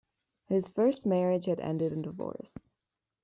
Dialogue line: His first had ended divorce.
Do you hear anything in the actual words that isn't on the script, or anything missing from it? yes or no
yes